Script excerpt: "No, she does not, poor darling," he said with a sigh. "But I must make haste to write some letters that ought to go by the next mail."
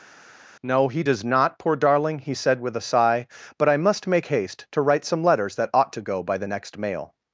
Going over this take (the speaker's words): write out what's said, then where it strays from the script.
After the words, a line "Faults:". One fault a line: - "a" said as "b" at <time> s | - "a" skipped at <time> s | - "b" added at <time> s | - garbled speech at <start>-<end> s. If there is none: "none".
"No, he does not, poor darling," he said with a sigh. "But I must make haste to write some letters that ought to go by the next mail."
Faults:
- "she" said as "he" at 0.9 s